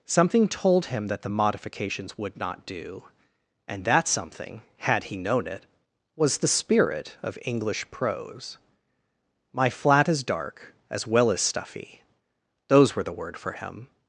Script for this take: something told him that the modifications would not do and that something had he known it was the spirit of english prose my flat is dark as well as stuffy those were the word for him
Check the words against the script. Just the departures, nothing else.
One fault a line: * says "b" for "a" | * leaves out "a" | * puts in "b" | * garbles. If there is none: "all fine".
all fine